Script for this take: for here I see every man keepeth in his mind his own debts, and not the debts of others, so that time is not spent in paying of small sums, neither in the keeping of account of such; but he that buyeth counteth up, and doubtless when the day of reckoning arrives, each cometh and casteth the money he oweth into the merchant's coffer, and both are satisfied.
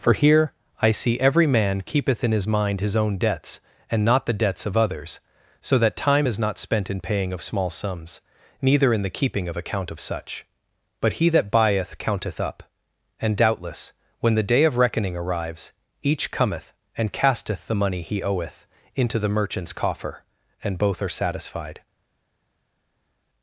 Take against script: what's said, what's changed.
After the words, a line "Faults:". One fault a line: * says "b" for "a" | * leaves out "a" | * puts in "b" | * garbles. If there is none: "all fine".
for here I see every man keepeth in his mind his own debts, and not the debts of others, so that time is not spent in paying of small sums, neither in the keeping of account of such; but he that buyeth counteth up, and doubtless when the day of reckoning arrives, each cometh and casteth the money he oweth into the merchant's coffer, and both are satisfied.
Faults:
all fine